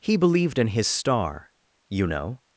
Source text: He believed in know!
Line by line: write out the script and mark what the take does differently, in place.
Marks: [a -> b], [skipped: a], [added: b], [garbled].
He believed in [added: his star you] know!